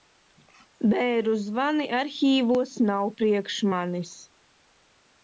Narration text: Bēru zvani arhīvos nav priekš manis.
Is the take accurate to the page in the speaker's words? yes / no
yes